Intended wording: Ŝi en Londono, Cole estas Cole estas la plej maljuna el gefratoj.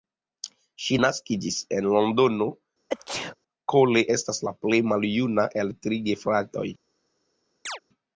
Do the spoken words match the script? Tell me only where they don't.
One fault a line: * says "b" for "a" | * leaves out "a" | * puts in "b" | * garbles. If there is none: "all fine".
* puts in "naskiĝis"
* leaves out "Cole estas"
* puts in "tri"